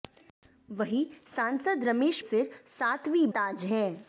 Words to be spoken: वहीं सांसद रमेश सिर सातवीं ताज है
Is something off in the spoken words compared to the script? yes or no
no